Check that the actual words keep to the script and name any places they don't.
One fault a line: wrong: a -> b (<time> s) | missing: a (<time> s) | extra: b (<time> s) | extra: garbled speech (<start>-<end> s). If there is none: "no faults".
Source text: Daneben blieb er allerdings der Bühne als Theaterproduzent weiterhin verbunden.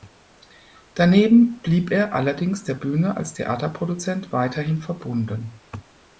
no faults